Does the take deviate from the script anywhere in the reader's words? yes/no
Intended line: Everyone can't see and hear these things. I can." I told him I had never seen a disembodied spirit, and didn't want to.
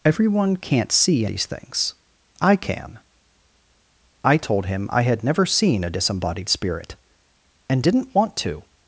yes